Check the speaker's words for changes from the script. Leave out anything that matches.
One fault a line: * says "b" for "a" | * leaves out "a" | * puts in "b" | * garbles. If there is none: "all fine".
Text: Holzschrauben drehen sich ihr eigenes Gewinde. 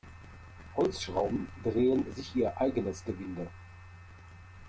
all fine